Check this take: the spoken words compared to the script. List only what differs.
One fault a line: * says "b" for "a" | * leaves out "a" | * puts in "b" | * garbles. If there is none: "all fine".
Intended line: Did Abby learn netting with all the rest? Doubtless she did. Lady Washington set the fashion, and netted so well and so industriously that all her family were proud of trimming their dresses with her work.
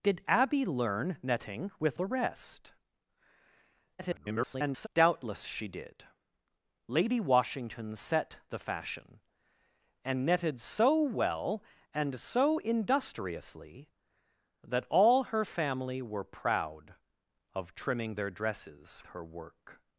* leaves out "all"
* garbles
* leaves out "with"